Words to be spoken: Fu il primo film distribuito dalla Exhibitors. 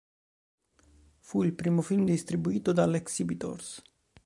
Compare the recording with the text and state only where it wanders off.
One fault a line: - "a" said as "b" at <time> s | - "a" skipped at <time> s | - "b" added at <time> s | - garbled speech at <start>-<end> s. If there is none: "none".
none